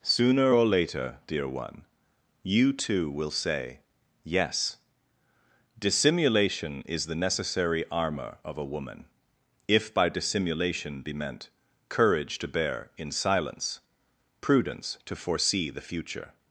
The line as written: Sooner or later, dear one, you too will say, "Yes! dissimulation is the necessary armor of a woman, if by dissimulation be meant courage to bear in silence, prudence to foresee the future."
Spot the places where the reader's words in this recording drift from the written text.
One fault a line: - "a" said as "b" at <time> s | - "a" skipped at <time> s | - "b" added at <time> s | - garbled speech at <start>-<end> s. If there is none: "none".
none